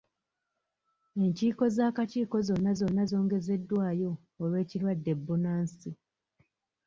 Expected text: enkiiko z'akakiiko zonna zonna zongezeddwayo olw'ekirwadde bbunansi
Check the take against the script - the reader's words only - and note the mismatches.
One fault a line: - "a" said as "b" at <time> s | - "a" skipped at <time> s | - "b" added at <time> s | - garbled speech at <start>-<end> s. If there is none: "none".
none